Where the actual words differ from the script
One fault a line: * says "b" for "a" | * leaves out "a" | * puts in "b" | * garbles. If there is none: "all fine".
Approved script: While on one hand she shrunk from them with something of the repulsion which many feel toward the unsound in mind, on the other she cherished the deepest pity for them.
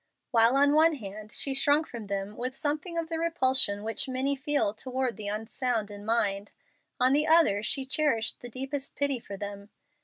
all fine